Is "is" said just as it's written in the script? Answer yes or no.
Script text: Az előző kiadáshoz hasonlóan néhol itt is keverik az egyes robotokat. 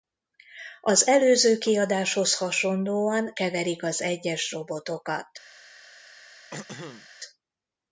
no